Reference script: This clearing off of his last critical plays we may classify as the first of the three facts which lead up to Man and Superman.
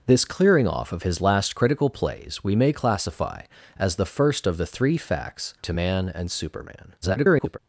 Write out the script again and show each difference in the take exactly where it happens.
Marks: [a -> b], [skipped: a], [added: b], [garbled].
This clearing off of his last critical plays we may classify as the first of the three facts [skipped: which lead up] to Man and Superman. [garbled]